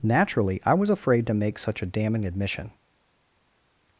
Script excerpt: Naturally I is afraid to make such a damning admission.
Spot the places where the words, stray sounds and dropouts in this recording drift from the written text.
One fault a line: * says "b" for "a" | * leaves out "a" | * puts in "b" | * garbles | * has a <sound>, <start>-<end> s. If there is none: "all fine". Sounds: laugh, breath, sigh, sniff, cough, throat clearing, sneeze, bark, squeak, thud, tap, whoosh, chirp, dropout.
* says "was" for "is"